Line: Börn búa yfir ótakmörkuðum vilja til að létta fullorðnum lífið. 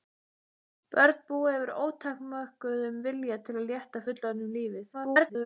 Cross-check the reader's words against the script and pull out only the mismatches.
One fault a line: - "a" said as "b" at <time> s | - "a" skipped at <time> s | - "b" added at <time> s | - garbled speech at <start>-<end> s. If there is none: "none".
- garbled speech at 4.9-5.5 s